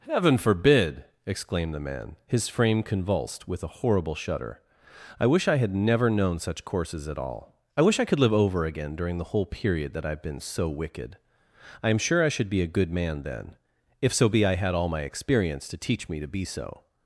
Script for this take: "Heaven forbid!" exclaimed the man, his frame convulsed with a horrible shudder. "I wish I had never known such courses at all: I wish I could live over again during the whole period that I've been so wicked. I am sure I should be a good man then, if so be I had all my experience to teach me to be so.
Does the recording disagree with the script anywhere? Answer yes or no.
no